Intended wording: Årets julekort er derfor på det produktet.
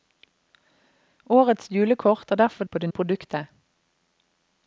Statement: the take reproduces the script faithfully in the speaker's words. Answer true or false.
true